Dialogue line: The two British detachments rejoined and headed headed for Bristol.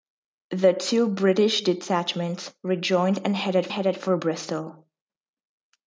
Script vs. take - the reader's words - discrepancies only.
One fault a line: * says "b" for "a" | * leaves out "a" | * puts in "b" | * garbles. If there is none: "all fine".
all fine